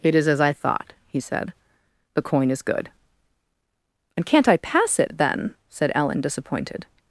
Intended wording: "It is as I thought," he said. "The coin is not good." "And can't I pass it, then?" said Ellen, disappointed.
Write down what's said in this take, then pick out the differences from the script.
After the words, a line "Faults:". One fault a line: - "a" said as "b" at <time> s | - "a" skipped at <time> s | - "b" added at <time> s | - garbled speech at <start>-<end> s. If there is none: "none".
"It is as I thought," he said. "The coin is good." "And can't I pass it, then?" said Ellen, disappointed.
Faults:
- "not" skipped at 2.6 s